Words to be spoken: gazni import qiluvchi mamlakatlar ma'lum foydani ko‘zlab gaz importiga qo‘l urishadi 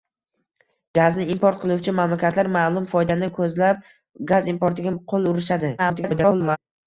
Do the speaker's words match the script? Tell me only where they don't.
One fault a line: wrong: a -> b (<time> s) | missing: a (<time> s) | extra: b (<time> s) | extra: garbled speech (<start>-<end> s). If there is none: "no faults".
extra: garbled speech (5.8-6.6 s)